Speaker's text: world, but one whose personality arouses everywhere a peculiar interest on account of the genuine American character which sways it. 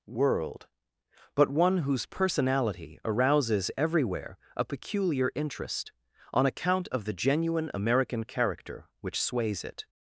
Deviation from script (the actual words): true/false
false